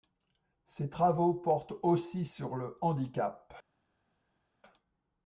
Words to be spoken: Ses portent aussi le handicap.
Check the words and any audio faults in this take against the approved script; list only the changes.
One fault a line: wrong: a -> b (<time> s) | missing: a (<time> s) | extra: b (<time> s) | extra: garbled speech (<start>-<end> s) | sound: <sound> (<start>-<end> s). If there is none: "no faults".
extra: travaux (0.9 s)
extra: sur (2.2 s)